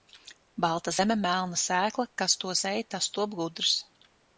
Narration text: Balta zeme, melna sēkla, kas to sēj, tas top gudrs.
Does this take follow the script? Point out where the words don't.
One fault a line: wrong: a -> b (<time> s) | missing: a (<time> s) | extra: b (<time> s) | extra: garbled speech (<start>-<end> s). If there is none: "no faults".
no faults